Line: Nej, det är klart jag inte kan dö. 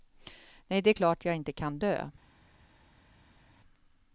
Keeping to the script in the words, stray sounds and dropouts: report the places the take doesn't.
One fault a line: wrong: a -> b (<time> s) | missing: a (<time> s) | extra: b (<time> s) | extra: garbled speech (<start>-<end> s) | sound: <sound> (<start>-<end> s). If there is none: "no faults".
no faults